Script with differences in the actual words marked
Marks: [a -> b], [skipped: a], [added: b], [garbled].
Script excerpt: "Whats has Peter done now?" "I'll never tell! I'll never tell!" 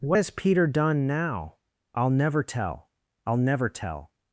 ["Whats -> What] has Peter done now?" "I'll never tell! I'll never tell!"